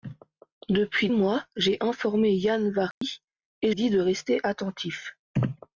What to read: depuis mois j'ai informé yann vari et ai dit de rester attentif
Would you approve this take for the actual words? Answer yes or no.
yes